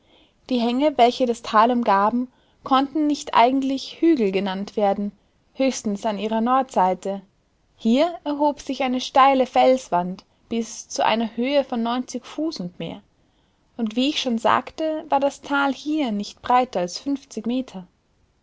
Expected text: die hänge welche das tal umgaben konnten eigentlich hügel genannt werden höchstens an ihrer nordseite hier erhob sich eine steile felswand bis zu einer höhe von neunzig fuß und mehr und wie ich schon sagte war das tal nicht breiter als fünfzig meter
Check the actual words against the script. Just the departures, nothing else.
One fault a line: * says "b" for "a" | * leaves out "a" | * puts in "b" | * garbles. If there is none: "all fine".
* puts in "nicht"
* puts in "hier"